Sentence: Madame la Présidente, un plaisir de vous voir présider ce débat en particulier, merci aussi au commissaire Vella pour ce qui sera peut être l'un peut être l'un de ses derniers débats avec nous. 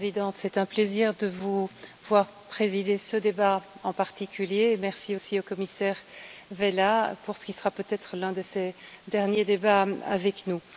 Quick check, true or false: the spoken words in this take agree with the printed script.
false